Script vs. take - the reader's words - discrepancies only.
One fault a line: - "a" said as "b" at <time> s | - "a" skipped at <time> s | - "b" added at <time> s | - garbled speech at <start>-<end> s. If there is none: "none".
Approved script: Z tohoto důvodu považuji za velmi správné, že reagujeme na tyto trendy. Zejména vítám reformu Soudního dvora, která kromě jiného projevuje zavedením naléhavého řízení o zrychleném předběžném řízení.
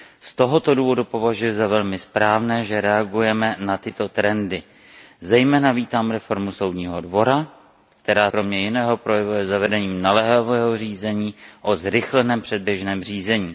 none